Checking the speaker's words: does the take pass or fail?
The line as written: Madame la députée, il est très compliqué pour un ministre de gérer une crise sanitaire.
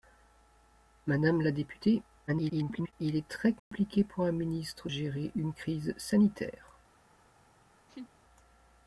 fail